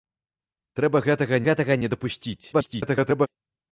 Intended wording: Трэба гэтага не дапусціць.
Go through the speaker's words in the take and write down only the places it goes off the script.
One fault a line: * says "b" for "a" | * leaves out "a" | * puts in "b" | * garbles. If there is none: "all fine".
* puts in "гэтага"
* garbles